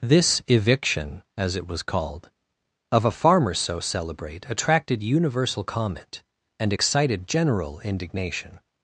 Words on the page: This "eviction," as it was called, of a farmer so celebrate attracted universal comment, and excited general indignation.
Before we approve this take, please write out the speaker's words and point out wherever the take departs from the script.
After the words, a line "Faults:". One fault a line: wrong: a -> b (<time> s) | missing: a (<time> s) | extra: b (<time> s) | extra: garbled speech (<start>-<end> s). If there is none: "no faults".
This "eviction," as it was called, of a farmer so celebrate attracted universal comment, and excited general indignation.
Faults:
no faults